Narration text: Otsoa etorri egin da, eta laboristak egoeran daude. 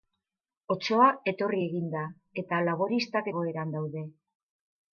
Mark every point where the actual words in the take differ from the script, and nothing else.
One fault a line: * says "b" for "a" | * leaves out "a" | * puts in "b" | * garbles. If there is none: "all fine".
all fine